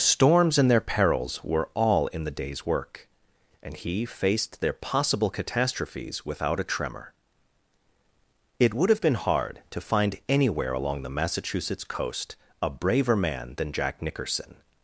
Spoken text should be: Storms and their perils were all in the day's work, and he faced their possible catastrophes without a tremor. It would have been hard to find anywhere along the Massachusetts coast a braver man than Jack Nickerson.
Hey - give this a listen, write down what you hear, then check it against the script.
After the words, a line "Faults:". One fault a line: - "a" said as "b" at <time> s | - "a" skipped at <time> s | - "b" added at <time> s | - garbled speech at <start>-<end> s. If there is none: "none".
Storms and their perils were all in the day's work, and he faced their possible catastrophes without a tremor. It would have been hard to find anywhere along the Massachusetts coast a braver man than Jack Nickerson.
Faults:
none